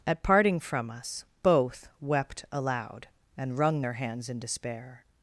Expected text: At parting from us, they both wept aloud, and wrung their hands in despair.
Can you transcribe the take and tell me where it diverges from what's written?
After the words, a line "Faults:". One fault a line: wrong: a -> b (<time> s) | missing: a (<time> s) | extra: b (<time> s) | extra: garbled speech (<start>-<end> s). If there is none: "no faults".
At parting from us, both wept aloud, and wrung their hands in despair.
Faults:
missing: they (1.2 s)